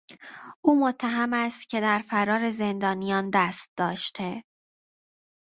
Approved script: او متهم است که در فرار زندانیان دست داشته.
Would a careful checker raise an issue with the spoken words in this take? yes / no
no